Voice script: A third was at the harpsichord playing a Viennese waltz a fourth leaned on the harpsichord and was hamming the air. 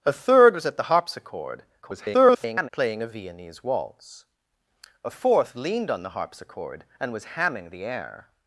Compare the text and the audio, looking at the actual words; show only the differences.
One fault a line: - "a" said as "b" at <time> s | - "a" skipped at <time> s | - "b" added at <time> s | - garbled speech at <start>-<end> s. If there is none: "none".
- garbled speech at 1.8-2.7 s